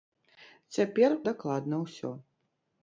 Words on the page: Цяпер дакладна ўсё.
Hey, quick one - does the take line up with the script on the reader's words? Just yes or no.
yes